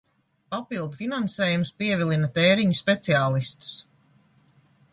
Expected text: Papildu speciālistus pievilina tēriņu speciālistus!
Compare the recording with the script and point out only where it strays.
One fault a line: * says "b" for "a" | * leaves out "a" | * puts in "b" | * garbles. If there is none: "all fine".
* says "finansējums" for "speciālistus"